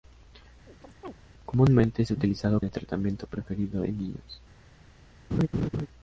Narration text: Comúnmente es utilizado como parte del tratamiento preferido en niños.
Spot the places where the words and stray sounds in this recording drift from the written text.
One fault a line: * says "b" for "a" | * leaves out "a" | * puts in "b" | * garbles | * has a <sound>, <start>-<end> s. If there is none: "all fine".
* has a chirp, 0.7-1.1 s
* leaves out "como parte"
* has a laugh, 5.3-5.9 s